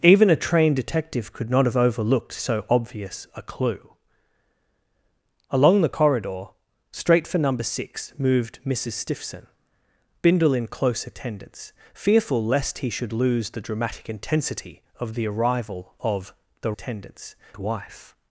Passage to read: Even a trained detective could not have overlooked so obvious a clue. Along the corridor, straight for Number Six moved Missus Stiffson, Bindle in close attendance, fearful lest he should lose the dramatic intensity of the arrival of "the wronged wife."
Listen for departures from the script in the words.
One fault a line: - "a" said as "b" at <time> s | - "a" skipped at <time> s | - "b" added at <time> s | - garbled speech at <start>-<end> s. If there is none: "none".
- "wronged" said as "attendance" at 16.7 s